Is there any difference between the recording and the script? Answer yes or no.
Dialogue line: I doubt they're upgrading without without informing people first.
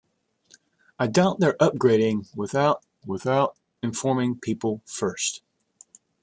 no